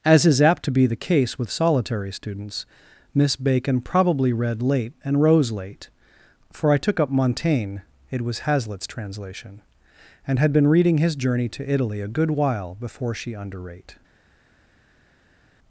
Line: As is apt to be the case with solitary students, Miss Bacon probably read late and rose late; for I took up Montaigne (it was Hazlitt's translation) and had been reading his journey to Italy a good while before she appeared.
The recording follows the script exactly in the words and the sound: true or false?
false